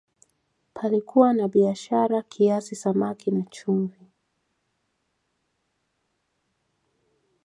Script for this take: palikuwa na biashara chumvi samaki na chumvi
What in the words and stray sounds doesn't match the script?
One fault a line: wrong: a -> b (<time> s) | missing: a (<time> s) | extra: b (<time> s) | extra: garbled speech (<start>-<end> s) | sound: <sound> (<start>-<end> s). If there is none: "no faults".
wrong: chumvi -> kiasi (2.2 s)